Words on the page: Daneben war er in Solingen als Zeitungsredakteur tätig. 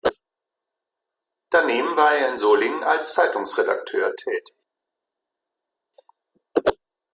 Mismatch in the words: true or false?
false